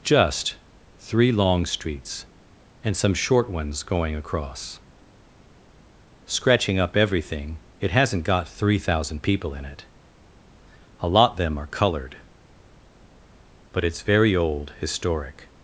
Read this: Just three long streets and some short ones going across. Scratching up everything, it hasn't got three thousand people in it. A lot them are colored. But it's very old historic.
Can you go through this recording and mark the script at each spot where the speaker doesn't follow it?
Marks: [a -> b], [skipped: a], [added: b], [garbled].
Just three long streets and some short ones going across. Scratching up everything, it hasn't got three thousand people in it. A lot them are colored. But it's very old historic.